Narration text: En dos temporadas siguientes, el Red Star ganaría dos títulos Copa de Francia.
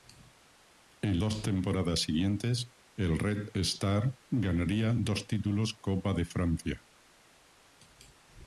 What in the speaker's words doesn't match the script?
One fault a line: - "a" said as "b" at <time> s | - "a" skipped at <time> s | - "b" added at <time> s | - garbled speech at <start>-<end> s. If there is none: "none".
none